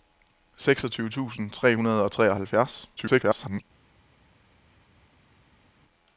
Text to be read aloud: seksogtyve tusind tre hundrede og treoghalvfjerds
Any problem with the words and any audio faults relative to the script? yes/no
yes